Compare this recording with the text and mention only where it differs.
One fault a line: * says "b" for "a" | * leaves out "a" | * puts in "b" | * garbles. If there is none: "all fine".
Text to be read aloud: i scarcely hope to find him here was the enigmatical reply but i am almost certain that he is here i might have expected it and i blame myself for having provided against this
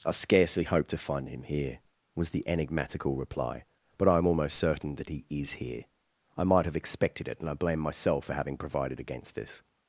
all fine